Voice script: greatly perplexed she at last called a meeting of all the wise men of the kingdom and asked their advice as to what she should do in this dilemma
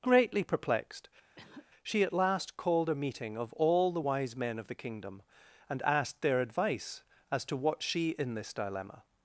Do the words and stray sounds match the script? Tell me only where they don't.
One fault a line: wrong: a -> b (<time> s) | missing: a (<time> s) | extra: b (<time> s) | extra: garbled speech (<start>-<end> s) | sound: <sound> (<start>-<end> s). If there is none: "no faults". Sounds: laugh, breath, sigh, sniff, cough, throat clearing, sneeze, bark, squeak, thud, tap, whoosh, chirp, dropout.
sound: cough (1.4-1.7 s)
missing: should do (8.1 s)